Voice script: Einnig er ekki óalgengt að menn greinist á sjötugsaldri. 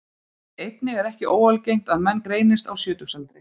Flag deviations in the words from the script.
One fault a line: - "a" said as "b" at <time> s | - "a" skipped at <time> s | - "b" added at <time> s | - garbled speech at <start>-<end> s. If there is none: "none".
none